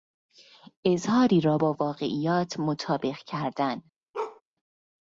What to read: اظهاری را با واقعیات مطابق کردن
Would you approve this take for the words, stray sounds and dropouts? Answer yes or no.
no